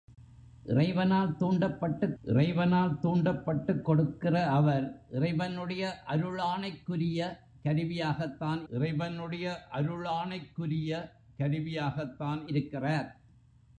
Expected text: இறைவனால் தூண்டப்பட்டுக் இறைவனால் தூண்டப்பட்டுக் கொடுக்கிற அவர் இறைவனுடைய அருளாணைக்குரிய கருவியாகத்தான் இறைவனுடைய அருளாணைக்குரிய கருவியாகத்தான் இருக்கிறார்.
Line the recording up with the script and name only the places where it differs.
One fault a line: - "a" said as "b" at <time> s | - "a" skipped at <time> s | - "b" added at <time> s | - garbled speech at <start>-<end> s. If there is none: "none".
none